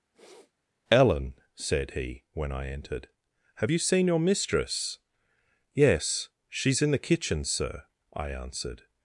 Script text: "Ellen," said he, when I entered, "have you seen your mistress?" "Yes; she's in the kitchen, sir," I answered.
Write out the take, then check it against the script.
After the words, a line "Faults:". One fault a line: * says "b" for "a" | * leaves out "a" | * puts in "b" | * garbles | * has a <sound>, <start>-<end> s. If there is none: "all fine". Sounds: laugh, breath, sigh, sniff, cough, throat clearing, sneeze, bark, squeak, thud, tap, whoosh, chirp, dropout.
"Ellen," said he, when I entered, "have you seen your mistress?" "Yes; she's in the kitchen, sir," I answered.
Faults:
* has a sniff, 0.1-0.5 s